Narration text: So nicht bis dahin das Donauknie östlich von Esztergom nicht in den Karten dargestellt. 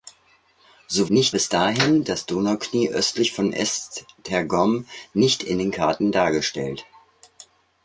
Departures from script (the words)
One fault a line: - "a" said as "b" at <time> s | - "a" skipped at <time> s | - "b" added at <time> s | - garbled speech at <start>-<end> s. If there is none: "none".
none